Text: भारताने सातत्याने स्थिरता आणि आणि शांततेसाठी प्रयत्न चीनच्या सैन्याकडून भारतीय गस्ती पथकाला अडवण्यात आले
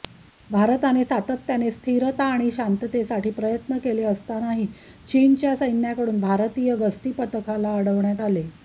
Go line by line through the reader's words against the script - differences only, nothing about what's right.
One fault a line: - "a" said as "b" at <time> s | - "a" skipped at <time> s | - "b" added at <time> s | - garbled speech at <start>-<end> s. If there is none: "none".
- "आणि" skipped at 2.5 s
- "केले असतानाही" added at 3.8 s